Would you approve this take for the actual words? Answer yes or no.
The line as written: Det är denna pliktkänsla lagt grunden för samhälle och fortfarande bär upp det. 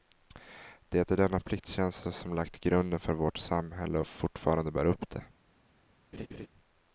no